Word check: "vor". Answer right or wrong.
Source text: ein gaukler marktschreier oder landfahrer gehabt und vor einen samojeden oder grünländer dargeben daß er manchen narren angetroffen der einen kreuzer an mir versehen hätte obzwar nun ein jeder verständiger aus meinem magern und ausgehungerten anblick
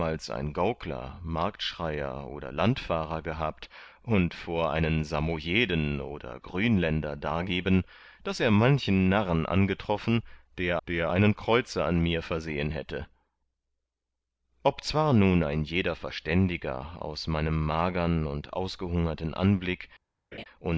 right